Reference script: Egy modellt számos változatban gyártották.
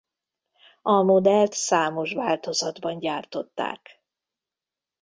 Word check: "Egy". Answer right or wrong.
wrong